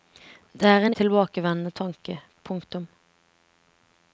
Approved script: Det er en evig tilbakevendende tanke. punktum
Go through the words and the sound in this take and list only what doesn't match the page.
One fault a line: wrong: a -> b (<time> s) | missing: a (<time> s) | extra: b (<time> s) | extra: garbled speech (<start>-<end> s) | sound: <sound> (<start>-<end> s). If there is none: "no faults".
missing: evig (0.9 s)